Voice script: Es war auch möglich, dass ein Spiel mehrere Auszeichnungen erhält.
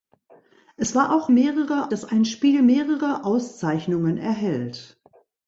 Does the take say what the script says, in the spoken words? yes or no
no